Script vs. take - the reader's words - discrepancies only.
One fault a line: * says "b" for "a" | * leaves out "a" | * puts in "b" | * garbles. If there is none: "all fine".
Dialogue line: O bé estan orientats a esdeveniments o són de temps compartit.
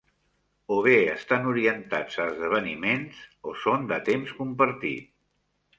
all fine